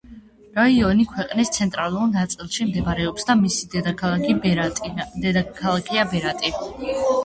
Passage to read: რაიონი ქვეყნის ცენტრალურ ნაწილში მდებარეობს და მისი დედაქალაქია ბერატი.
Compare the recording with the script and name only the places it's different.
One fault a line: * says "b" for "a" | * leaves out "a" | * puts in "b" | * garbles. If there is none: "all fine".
all fine